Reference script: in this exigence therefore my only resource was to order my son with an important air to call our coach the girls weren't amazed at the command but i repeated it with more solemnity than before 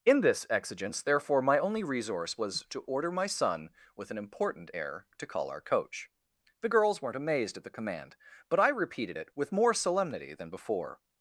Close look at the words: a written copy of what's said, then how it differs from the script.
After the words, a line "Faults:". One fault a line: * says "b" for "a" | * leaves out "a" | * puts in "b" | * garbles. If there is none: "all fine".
in this exigence therefore my only resource was to order my son with an important air to call our coach the girls weren't amazed at the command but i repeated it with more solemnity than before
Faults:
all fine